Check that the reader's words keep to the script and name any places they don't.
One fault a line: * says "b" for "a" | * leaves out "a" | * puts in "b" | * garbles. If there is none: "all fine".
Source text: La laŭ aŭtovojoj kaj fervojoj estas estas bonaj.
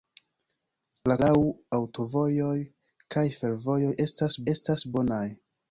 all fine